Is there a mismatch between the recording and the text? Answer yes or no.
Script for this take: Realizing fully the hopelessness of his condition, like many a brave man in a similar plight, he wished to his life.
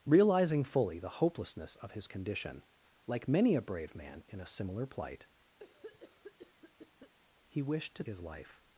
no